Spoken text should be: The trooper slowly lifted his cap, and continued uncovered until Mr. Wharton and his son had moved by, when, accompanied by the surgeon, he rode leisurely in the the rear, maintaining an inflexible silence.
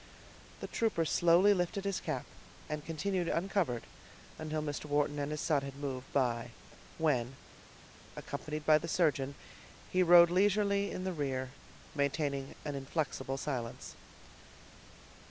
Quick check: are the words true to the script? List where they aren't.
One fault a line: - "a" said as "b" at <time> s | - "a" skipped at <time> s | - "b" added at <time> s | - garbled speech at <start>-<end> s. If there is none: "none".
- "the" skipped at 11.1 s